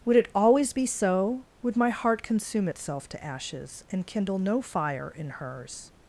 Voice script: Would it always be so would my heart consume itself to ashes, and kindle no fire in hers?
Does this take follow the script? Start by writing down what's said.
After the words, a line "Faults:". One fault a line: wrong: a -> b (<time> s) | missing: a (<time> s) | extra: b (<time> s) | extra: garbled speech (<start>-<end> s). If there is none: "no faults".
Would it always be so would my heart consume itself to ashes, and kindle no fire in hers?
Faults:
no faults